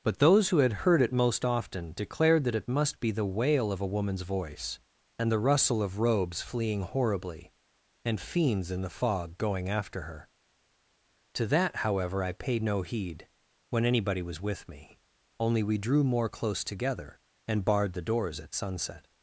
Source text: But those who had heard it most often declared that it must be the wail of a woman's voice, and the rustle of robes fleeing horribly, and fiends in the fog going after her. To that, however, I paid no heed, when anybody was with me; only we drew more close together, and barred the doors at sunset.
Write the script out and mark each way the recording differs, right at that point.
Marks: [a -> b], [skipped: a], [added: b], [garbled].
But those who had heard it most often declared that it must be the wail of a woman's voice, and the rustle of robes fleeing horribly, and fiends in the fog going after her. To that, however, I paid no heed, when anybody was with me; only we drew more close together, and barred the doors at sunset.